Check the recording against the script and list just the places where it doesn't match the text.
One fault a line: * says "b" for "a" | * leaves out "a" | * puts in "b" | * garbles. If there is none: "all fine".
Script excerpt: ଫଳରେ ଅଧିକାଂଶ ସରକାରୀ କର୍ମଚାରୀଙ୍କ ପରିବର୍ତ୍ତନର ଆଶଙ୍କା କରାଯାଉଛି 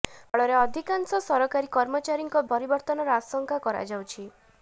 all fine